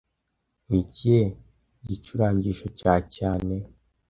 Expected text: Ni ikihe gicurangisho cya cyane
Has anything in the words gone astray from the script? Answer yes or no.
no